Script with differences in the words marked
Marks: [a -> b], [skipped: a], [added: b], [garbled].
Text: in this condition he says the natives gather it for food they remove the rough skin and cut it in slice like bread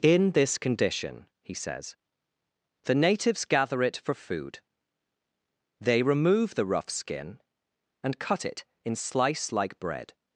in this condition he says the natives gather it for food they remove the rough skin and cut it in slice like bread